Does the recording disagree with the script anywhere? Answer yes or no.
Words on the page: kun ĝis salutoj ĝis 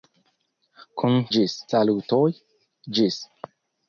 no